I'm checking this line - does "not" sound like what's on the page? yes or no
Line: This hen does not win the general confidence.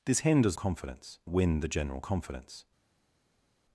no